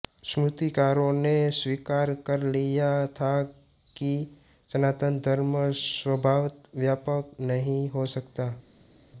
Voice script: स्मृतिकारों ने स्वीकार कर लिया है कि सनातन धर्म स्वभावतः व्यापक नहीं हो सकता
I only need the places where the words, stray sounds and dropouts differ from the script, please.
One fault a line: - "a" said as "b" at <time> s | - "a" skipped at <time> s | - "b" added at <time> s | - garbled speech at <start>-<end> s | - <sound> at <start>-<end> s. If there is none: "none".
- "है" said as "था" at 3.2 s